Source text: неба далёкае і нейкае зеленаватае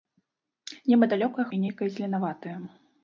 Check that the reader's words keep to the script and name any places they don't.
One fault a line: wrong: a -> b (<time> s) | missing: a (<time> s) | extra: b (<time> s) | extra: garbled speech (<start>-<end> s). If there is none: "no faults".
no faults